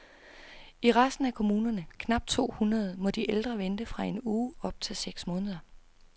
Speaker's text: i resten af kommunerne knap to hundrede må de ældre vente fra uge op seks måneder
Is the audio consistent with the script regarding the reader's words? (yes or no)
no